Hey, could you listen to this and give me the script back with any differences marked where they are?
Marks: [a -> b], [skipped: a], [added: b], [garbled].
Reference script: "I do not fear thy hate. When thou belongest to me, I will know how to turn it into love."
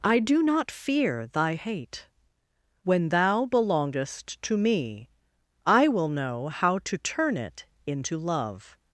"I do not fear thy hate. When thou belongest to me, I will know how to turn it into love."